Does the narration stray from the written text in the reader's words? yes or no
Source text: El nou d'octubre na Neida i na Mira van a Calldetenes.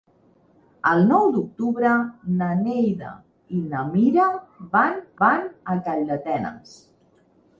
yes